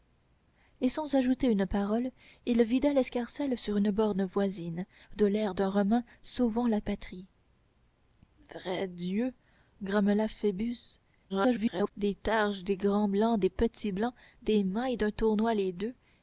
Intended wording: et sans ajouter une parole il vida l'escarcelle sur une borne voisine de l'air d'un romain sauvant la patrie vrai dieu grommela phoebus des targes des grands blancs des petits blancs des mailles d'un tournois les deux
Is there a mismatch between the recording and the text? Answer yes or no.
yes